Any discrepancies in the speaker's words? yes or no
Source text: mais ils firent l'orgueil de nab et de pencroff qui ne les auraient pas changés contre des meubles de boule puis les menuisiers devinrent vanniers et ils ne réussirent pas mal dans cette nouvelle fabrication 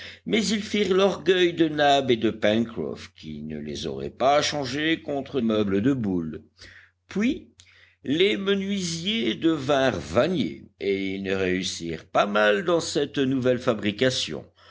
yes